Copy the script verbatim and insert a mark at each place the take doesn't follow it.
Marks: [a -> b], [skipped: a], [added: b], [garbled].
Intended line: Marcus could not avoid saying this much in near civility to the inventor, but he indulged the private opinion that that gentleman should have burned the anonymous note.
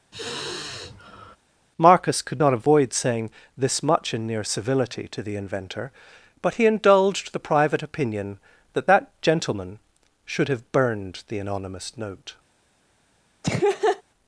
Marcus could not avoid saying this much in near civility to the inventor, but he indulged the private opinion that that gentleman should have burned the anonymous note.